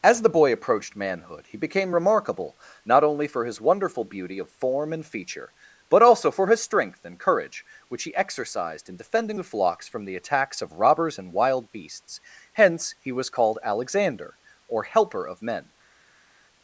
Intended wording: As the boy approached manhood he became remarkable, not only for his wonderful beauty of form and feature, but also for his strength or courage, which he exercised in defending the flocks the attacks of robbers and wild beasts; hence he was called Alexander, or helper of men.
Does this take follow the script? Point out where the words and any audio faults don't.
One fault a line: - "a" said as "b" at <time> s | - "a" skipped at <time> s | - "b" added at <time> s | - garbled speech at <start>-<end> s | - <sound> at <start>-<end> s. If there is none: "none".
- "or" said as "and" at 7.0 s
- "from" added at 9.9 s